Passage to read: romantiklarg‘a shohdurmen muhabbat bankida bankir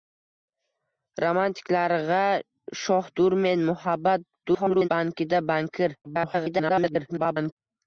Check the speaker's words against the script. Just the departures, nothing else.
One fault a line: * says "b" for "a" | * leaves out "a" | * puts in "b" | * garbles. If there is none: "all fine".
* garbles
* garbles